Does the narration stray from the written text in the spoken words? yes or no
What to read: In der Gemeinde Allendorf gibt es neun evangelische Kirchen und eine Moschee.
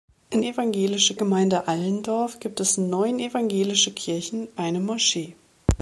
yes